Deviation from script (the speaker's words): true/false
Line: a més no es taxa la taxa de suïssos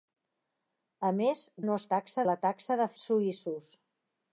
false